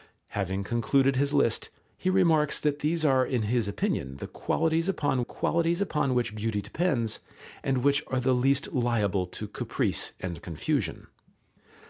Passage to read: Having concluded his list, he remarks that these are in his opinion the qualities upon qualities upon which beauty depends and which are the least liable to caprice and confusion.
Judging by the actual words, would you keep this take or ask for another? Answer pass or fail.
pass